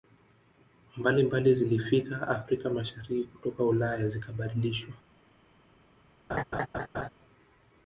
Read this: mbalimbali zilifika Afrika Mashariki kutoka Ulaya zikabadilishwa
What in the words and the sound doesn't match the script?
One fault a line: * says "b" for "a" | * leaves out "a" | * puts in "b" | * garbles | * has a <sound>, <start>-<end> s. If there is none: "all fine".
* has a laugh, 6.3-7.1 s